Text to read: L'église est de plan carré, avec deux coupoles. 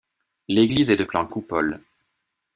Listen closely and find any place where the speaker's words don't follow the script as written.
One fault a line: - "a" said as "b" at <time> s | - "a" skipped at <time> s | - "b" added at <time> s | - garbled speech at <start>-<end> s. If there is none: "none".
- "carré avec deux" skipped at 1.3 s